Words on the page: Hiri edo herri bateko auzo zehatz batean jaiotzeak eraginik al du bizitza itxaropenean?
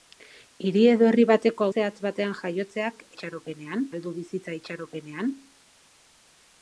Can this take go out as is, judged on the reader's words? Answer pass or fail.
fail